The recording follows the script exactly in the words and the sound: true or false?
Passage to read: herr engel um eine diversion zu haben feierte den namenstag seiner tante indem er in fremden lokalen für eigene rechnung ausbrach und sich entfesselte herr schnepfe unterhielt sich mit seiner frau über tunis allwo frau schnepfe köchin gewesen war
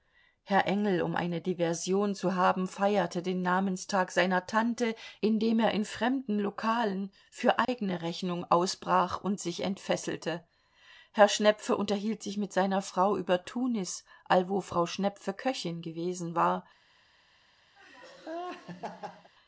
false